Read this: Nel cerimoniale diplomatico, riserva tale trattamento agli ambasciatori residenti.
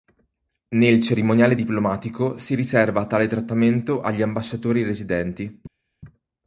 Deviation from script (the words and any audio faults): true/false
true